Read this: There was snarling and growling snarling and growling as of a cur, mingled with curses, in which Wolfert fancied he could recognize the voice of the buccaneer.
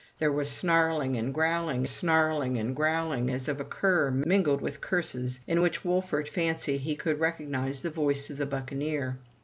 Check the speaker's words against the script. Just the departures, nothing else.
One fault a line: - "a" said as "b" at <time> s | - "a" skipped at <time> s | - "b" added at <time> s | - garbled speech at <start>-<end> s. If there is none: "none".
none